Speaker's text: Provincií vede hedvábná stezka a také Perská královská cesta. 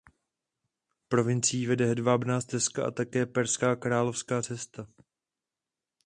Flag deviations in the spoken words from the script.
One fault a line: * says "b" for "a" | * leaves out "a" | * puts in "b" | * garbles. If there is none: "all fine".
all fine